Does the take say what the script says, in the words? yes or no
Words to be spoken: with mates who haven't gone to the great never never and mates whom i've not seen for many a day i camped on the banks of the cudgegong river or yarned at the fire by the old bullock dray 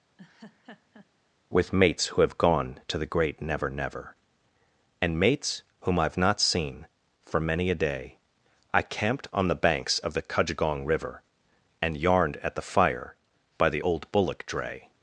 no